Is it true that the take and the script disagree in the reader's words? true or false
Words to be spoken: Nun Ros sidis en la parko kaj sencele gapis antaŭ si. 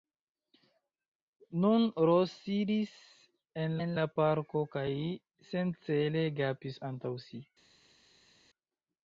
true